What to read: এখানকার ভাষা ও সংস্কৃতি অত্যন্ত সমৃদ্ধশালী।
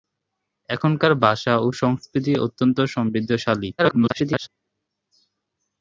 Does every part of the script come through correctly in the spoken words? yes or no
no